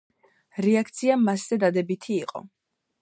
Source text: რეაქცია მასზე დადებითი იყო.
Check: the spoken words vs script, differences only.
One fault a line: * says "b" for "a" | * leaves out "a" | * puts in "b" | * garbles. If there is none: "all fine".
all fine